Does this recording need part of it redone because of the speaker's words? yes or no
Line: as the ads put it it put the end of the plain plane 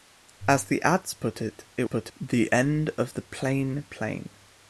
no